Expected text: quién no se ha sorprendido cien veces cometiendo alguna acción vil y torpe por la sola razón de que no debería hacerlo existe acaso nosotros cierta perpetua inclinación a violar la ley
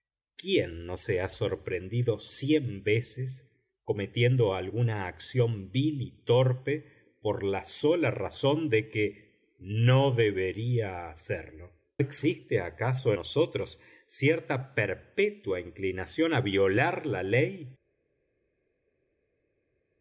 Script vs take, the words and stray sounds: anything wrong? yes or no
no